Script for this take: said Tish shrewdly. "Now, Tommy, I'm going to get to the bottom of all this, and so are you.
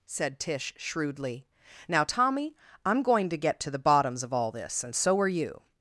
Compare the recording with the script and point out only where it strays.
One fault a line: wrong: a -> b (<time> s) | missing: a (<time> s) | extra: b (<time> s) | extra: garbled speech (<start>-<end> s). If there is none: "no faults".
wrong: bottom -> bottoms (3.8 s)